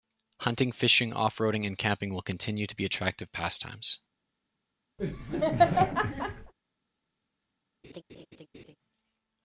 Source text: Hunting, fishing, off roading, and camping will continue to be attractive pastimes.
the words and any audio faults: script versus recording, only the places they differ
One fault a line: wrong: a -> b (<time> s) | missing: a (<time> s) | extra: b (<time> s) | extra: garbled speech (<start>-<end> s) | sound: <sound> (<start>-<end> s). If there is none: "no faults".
sound: laugh (5.0-6.5 s)
sound: laugh (7.8-8.8 s)